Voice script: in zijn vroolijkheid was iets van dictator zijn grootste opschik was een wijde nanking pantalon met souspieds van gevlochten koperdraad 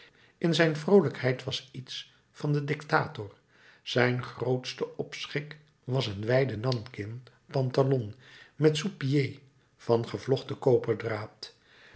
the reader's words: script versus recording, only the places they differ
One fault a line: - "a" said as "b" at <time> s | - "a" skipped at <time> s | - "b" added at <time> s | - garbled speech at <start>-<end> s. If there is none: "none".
- "den" added at 2.5 s